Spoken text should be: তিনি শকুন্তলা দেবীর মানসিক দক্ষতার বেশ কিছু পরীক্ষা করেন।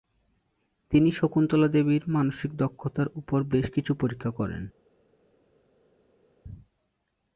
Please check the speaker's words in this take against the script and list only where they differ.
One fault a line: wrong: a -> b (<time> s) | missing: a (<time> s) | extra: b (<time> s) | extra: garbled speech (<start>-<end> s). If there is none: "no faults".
extra: উপর (3.1 s)